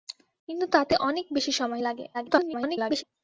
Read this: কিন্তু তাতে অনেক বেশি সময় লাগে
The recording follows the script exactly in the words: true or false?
false